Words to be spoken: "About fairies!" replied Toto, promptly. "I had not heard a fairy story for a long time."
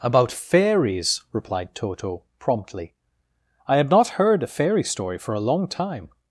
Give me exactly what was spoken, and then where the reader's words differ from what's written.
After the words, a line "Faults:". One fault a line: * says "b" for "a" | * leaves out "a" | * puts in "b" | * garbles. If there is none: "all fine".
"About fairies!" replied Toto, promptly. "I had not heard a fairy story for a long time."
Faults:
all fine